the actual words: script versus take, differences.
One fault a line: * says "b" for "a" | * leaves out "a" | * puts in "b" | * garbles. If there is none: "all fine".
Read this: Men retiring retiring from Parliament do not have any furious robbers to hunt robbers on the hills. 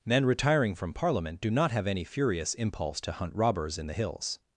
* leaves out "retiring"
* says "impulse" for "robbers"
* says "in" for "on"